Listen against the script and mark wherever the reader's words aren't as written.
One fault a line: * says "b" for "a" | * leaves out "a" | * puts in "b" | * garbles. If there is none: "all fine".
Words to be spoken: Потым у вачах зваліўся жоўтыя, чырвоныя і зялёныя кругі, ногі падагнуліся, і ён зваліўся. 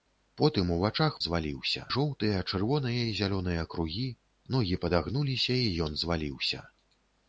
all fine